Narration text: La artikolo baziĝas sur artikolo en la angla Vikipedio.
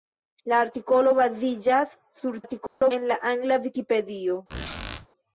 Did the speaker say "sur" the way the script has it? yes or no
yes